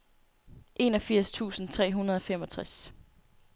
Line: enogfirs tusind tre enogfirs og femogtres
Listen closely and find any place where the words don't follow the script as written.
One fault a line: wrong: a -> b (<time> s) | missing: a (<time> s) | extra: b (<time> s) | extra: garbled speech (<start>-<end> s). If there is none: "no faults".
wrong: enogfirs -> hundrede (1.9 s)